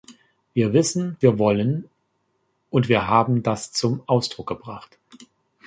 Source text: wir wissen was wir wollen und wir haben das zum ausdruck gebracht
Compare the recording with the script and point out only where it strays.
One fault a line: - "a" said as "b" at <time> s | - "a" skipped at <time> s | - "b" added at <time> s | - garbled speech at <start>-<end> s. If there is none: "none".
- "was" skipped at 1.2 s